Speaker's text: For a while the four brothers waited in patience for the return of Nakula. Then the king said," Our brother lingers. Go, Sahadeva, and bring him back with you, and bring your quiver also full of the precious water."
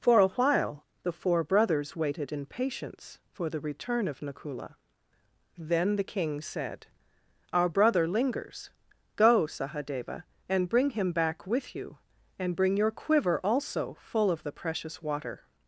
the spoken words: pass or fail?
pass